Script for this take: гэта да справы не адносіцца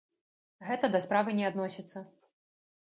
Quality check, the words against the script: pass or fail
pass